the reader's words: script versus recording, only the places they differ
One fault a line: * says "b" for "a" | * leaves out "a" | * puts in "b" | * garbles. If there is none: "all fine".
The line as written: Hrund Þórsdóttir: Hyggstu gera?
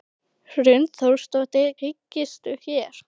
all fine